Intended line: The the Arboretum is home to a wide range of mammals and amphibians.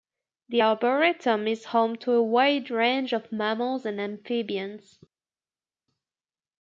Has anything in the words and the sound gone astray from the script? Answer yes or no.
yes